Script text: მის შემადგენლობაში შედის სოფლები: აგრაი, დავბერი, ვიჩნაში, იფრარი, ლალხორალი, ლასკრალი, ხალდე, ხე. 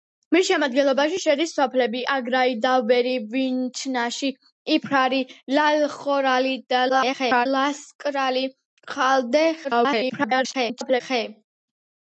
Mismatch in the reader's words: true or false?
true